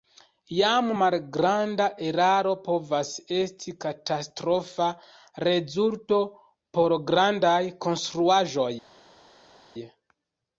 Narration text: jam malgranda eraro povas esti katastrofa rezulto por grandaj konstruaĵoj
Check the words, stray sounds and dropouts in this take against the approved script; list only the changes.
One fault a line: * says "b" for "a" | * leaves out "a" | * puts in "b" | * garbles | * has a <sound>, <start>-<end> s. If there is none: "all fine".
all fine